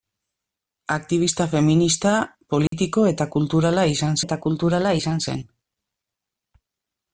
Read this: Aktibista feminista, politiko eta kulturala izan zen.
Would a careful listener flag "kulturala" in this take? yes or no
no